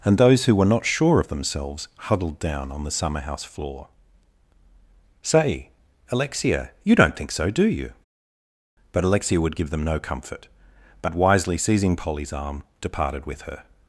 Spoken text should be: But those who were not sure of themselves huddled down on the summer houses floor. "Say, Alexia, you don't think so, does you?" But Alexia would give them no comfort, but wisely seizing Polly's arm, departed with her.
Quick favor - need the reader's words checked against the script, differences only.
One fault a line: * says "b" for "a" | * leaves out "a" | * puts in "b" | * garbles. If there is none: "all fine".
* says "And" for "But"
* says "house" for "houses"
* says "do" for "does"